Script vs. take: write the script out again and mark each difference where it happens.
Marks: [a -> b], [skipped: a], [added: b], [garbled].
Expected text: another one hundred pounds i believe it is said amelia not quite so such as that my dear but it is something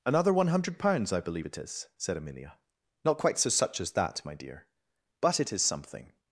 another one hundred pounds i believe it is said amelia not quite so such as that my dear but it is something